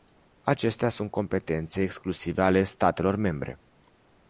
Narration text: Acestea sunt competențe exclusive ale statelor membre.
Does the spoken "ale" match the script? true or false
true